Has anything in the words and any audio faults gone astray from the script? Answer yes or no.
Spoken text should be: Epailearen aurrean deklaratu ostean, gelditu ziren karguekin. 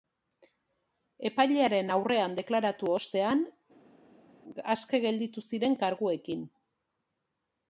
yes